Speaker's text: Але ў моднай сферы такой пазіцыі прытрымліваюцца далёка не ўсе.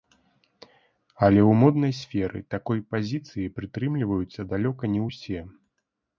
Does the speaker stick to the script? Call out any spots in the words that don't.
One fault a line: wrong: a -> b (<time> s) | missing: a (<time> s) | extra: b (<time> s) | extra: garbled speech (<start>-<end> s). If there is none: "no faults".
no faults